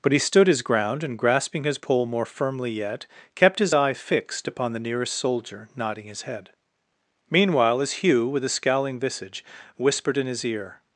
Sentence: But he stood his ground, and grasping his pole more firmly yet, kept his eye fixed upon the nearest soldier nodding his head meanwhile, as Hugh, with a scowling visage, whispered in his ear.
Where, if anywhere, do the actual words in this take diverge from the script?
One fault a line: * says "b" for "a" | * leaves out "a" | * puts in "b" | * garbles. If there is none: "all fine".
all fine